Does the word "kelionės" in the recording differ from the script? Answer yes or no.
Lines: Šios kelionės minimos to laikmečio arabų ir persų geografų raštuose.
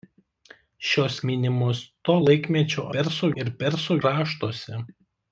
yes